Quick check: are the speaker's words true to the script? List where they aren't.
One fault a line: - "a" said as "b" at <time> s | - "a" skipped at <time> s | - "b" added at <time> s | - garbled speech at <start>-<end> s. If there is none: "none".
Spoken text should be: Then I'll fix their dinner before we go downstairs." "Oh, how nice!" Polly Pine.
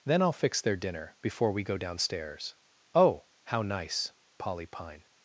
none